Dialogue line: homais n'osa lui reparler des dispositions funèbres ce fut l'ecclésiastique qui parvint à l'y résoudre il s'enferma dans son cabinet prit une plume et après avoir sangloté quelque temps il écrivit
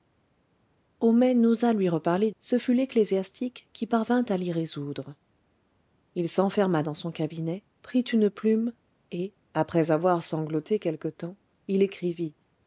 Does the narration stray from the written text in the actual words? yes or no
yes